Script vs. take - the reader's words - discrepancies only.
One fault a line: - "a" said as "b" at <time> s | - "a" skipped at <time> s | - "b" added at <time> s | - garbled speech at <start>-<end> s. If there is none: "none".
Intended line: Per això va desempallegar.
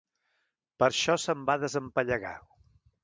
- "se'n" added at 1.2 s